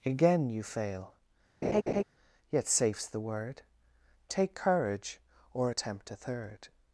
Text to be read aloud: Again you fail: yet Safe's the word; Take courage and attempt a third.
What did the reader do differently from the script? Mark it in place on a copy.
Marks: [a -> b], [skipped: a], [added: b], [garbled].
Again you fail: yet Safe's the word; Take courage [and -> or] attempt a third.